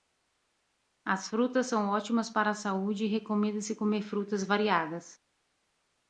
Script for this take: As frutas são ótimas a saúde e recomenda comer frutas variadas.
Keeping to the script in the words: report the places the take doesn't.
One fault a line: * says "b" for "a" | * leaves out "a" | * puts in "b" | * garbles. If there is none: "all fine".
* puts in "para"
* puts in "se"